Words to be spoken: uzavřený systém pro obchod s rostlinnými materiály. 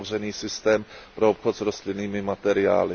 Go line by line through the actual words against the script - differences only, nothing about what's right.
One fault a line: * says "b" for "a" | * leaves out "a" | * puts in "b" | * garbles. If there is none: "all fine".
all fine